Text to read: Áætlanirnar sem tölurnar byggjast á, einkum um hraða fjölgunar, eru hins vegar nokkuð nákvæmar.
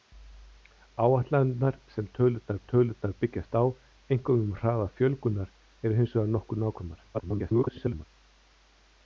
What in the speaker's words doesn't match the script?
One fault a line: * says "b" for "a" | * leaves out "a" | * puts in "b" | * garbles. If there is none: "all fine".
* puts in "tölurnar"
* garbles